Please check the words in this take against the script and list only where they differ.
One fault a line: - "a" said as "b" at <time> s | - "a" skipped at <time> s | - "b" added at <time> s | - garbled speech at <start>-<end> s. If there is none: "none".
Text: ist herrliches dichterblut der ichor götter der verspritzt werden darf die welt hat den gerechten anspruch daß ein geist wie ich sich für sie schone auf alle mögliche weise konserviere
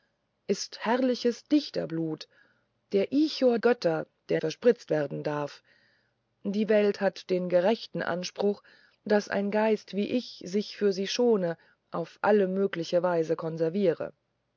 none